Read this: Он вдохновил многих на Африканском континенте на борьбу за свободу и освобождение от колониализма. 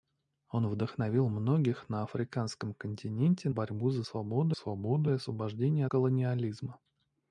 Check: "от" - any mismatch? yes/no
yes